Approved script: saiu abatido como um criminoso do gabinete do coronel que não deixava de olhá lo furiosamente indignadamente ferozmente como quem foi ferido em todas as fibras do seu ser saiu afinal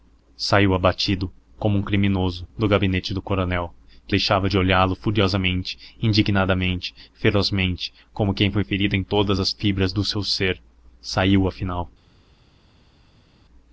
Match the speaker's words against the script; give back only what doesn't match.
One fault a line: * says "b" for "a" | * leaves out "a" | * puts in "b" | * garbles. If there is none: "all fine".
* leaves out "não"